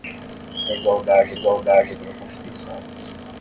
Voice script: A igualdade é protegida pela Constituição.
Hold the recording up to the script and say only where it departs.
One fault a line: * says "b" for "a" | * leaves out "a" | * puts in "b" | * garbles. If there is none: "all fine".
* says "igualdade" for "protegida"